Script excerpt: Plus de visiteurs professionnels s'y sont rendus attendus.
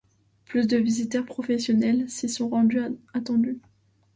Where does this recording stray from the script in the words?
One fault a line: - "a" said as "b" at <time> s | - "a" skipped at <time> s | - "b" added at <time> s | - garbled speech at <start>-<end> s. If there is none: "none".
none